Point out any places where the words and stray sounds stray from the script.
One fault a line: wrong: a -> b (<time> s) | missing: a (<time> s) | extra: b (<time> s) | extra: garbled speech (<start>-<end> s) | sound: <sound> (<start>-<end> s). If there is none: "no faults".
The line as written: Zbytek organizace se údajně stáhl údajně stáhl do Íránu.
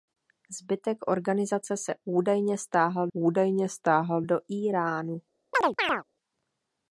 sound: chirp (5.5-6.0 s)